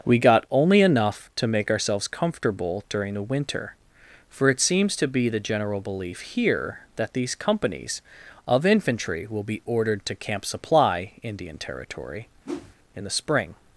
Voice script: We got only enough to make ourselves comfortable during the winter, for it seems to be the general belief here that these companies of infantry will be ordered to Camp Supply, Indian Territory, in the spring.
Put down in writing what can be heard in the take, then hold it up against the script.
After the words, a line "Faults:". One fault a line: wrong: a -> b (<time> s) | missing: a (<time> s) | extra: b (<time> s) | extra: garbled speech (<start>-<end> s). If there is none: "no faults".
We got only enough to make ourselves comfortable during the winter, for it seems to be the general belief here that these companies of infantry will be ordered to Camp Supply, Indian Territory, in the spring.
Faults:
no faults